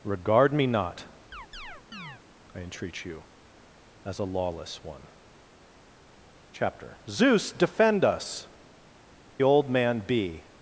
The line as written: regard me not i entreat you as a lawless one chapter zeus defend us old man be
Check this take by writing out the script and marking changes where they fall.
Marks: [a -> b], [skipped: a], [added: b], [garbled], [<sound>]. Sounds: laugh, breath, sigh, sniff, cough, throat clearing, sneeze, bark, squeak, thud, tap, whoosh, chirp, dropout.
regard me not [chirp] i entreat you as a lawless one chapter zeus defend us old man be